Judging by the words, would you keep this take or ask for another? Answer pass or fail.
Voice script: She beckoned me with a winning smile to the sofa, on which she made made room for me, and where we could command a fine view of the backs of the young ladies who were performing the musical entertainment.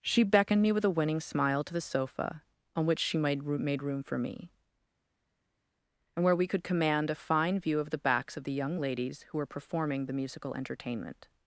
pass